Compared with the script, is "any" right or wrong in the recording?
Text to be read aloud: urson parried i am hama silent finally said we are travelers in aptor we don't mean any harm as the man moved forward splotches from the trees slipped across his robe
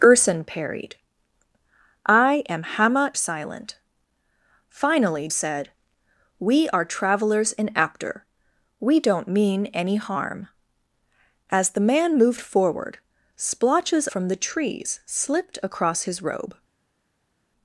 right